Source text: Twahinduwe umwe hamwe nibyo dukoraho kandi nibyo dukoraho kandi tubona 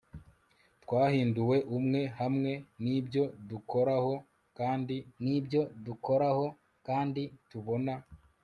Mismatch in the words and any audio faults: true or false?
false